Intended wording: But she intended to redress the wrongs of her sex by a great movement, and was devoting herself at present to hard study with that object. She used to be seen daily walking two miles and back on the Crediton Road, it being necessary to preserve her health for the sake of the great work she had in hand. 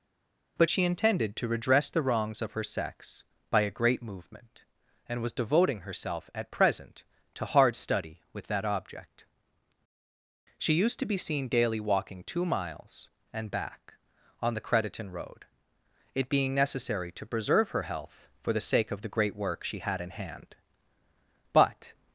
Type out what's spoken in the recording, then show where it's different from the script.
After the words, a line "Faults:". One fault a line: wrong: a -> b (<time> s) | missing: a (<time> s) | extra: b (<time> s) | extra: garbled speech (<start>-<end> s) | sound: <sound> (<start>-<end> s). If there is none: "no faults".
But she intended to redress the wrongs of her sex by a great movement, and was devoting herself at present to hard study with that object. She used to be seen daily walking two miles and back on the Crediton Road, it being necessary to preserve her health for the sake of the great work she had in hand. But
Faults:
extra: But (21.5 s)